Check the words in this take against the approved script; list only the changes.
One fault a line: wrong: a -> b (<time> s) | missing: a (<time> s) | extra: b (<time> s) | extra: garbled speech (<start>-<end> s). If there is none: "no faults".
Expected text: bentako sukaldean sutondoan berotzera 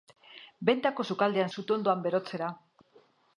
no faults